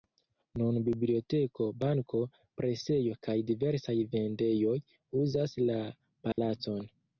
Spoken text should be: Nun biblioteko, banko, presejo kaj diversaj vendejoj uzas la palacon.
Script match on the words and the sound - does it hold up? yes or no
no